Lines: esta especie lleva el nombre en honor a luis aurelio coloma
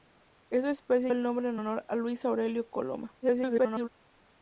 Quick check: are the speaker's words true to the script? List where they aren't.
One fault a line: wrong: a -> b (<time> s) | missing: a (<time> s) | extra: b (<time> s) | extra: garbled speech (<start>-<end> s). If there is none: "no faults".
missing: lleva (1.1 s)
extra: garbled speech (3.2-3.9 s)